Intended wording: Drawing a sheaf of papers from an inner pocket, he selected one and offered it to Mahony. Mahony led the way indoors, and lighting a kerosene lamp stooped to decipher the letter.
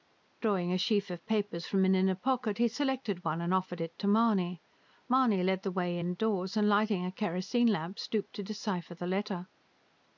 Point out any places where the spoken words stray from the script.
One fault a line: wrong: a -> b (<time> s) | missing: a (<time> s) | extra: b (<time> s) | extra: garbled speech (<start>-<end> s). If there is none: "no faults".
no faults